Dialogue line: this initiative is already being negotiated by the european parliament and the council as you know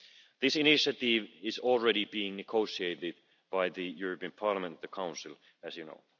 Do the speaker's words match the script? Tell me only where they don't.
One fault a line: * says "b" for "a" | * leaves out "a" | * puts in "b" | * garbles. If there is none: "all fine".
all fine